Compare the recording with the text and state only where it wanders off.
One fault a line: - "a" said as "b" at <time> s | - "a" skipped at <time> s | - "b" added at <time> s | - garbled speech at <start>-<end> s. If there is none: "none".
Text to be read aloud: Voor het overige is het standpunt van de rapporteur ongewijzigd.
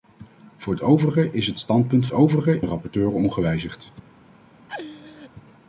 - "van" said as "overige" at 2.1 s